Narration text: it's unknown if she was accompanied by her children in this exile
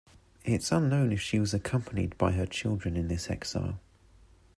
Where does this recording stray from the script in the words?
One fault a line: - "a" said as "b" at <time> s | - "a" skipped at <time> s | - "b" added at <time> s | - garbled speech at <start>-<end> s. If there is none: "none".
none